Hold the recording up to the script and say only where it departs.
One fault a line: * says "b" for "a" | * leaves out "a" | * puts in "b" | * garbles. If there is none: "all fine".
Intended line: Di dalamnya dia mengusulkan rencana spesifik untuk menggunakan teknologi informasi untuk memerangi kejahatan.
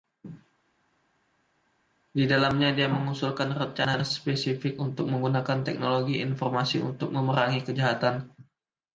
all fine